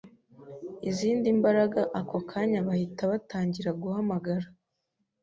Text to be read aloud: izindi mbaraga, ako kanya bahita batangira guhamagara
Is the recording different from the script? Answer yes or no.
no